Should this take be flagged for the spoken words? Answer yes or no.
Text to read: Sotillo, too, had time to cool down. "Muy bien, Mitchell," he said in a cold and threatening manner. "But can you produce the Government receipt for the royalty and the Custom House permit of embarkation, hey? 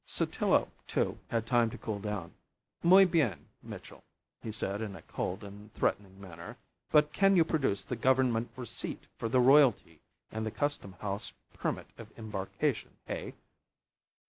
no